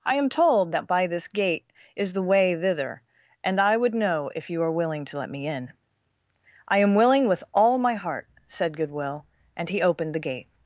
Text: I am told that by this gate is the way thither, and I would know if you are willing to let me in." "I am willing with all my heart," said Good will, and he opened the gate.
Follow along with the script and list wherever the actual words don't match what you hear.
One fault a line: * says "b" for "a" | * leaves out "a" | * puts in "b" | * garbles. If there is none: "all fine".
all fine